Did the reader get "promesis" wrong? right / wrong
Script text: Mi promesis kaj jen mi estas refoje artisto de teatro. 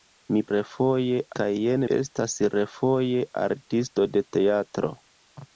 wrong